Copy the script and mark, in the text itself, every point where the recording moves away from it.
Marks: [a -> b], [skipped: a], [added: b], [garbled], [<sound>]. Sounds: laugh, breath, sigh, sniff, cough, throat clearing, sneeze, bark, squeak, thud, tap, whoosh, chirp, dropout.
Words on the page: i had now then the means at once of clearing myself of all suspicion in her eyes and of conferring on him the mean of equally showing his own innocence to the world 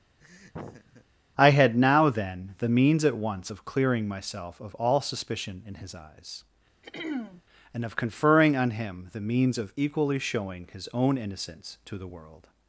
[laugh] i had now then the means at once of clearing myself of all suspicion in [her -> his] eyes [throat clearing] and of conferring on him the [mean -> means] of equally showing his own innocence to the world